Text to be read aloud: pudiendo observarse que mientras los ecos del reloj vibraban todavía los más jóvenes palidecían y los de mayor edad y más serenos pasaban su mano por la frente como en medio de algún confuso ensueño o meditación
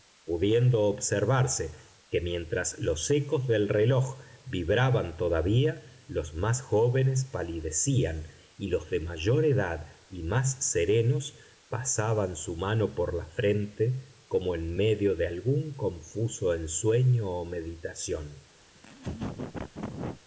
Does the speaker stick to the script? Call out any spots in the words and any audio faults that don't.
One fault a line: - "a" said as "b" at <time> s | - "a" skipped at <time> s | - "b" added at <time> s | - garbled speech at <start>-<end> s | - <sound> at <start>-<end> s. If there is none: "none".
- laugh at 18.7-20.2 s